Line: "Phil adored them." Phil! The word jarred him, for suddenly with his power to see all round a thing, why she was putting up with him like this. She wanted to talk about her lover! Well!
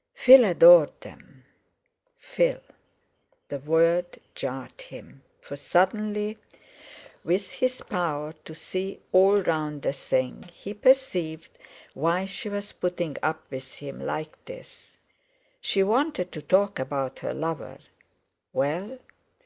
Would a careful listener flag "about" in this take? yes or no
no